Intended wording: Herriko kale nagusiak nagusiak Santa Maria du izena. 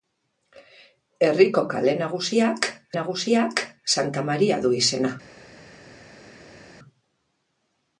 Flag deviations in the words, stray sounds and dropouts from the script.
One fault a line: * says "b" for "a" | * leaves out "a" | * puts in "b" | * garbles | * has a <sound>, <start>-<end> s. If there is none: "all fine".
all fine